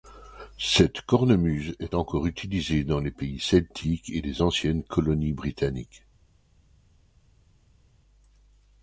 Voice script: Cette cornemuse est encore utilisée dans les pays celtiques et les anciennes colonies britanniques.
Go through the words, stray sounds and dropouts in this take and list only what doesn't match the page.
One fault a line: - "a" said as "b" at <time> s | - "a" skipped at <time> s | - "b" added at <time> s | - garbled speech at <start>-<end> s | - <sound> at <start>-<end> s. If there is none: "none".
none